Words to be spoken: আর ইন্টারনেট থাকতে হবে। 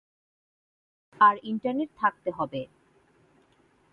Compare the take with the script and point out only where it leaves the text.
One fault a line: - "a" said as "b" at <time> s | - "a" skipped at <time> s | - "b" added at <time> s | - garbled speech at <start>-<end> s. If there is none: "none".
none